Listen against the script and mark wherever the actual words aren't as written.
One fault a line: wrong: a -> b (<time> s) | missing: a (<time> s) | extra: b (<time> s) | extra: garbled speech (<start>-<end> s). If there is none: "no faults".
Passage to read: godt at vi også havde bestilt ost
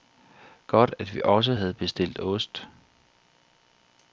no faults